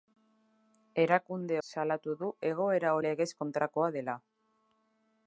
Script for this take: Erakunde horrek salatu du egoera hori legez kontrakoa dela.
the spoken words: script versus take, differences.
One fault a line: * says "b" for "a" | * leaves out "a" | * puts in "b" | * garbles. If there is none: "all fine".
* leaves out "horrek"
* leaves out "hori"